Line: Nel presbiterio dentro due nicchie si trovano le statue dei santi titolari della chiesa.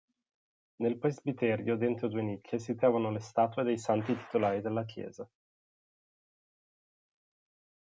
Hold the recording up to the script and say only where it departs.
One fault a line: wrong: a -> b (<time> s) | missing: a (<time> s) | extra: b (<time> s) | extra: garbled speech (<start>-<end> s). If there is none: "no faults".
no faults